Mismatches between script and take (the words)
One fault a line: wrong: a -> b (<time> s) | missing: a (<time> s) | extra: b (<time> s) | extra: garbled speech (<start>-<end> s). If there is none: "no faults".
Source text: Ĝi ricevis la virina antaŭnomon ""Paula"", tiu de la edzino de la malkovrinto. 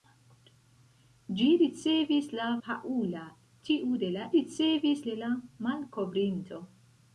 missing: virina antaŭnomon (2.5 s)
wrong: edzino -> ricevis (4.3 s)